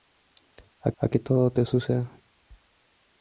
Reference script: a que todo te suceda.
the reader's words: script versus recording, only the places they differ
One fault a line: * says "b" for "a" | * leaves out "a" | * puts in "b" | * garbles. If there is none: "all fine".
* puts in "a"